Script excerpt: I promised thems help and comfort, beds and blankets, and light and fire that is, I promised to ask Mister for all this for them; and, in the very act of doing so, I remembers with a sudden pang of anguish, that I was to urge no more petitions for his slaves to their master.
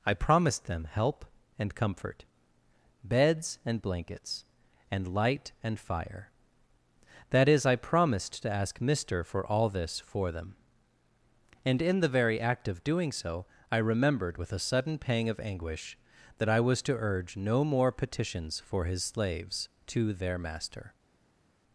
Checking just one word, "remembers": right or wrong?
wrong